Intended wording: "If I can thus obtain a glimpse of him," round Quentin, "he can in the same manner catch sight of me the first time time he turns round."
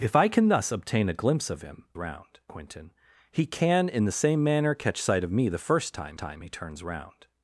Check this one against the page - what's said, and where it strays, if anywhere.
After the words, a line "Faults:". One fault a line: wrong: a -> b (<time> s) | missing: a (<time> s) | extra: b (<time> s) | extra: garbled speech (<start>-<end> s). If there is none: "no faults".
"If I can thus obtain a glimpse of him," round Quentin, "he can in the same manner catch sight of me the first time time he turns round."
Faults:
no faults